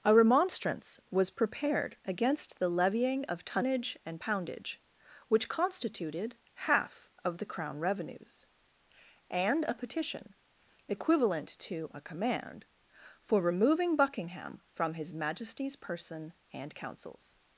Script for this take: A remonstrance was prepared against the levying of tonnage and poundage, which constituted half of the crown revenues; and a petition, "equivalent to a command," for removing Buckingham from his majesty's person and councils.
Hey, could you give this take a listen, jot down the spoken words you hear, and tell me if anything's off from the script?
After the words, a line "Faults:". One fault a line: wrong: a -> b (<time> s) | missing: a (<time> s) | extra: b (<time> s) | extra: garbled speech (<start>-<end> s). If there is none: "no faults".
A remonstrance was prepared against the levying of tonnage and poundage, which constituted half of the crown revenues; and a petition, "equivalent to a command," for removing Buckingham from his majesty's person and councils.
Faults:
no faults